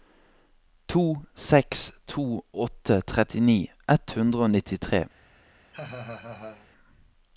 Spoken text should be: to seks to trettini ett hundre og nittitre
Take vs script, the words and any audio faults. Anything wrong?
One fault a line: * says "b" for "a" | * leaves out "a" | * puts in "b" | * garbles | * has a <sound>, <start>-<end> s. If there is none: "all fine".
* puts in "åtte"
* has a laugh, 5.7-6.7 s